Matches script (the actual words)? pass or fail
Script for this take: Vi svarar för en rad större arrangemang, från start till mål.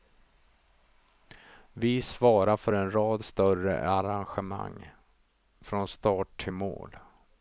pass